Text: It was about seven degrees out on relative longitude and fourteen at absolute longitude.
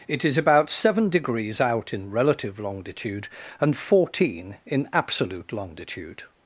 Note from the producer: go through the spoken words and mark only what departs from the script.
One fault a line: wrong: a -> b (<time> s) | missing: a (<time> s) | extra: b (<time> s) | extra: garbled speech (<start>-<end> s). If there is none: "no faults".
wrong: was -> is (0.2 s)
wrong: on -> in (1.9 s)
wrong: at -> in (4.7 s)